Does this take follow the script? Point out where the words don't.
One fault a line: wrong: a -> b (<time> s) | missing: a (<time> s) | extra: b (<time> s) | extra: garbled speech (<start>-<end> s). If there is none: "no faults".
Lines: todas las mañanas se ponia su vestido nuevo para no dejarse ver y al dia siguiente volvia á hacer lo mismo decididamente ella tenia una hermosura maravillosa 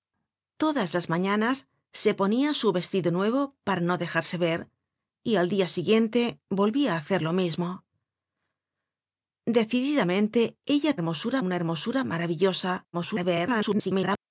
wrong: tenia -> hermosura (10.9 s)
extra: garbled speech (12.9-14.2 s)